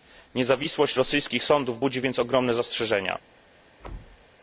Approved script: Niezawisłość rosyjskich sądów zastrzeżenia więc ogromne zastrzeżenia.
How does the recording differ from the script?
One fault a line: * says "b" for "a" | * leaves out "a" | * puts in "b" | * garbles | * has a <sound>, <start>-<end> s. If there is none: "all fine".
* says "budzi" for "zastrzeżenia"
* has a thud, 3.8-4.3 s